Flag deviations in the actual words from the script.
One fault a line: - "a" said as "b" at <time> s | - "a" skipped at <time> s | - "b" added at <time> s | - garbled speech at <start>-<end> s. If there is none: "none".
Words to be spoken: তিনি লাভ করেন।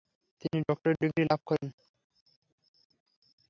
- "ডক্টরেট ডিগ্রি" added at 0.7 s